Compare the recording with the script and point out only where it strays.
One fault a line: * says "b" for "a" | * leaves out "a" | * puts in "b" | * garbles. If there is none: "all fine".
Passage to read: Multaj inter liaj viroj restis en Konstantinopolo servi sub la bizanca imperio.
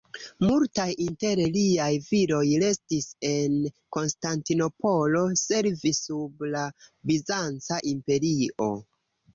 all fine